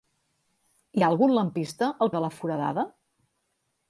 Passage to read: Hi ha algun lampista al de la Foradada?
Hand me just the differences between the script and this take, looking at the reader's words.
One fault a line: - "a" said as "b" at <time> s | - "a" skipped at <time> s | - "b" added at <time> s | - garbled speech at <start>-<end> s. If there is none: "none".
none